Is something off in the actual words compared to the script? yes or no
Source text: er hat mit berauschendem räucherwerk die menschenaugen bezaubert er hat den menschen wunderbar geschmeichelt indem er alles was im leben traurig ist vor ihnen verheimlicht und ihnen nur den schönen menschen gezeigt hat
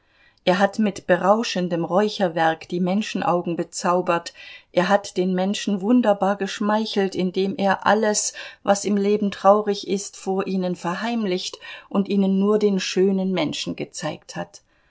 no